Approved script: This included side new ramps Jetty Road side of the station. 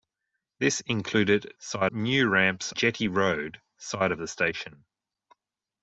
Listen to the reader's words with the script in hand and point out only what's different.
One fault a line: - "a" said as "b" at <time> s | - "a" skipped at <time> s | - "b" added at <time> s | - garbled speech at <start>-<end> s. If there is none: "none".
none